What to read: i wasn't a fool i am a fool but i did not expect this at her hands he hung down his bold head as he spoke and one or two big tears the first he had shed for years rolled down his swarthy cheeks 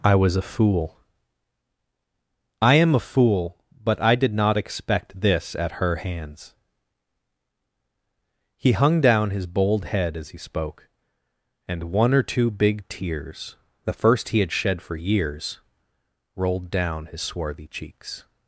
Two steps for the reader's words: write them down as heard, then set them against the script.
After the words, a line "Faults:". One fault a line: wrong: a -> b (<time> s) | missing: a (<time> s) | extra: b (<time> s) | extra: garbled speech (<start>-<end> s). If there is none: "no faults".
i was a fool i am a fool but i did not expect this at her hands he hung down his bold head as he spoke and one or two big tears the first he had shed for years rolled down his swarthy cheeks
Faults:
wrong: wasn't -> was (0.1 s)